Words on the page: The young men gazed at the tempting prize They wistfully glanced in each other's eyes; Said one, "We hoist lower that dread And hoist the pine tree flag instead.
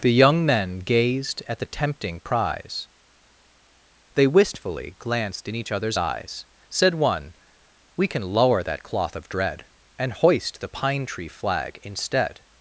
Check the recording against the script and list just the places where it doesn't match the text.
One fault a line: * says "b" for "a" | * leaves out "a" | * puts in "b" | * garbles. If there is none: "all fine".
* says "can" for "hoist"
* puts in "cloth of"